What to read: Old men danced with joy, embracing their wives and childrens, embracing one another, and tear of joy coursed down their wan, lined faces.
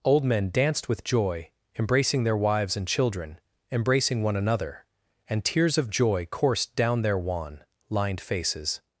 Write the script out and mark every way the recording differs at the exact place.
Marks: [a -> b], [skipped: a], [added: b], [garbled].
Old men danced with joy, embracing their wives and [childrens, -> children] embracing one another, and [tear -> tears] of joy coursed down their wan, lined faces.